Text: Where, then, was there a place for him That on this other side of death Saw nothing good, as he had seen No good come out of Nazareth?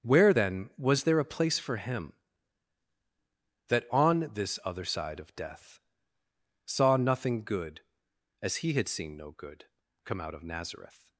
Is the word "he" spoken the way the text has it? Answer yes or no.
yes